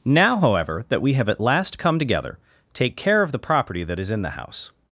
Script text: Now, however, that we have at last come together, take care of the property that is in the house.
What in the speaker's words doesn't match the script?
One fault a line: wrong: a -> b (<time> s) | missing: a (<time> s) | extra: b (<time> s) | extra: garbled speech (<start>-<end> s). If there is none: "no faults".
no faults